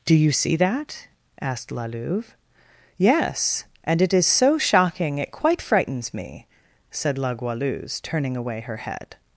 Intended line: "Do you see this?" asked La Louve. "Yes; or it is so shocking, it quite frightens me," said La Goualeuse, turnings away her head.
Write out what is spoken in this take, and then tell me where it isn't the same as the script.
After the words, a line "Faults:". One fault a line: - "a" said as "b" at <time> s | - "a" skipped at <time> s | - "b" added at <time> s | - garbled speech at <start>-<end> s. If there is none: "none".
"Do you see that?" asked La Louve. "Yes; and it is so shocking, it quite frightens me," said La Goualeuse, turning away her head.
Faults:
- "this" said as "that" at 0.6 s
- "or" said as "and" at 3.8 s
- "turnings" said as "turning" at 8.0 s